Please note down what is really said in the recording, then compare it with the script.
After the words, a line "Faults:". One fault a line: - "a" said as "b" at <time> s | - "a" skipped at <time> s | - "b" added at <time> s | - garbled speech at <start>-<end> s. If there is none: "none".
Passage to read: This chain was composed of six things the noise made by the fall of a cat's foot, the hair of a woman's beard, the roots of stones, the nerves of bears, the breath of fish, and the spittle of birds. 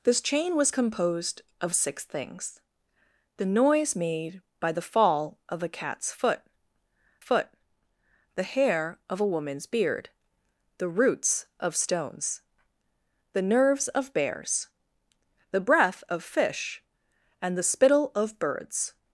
This chain was composed of six things the noise made by the fall of a cat's foot foot, the hair of a woman's beard, the roots of stones, the nerves of bears, the breath of fish, and the spittle of birds.
Faults:
- "foot" added at 7.2 s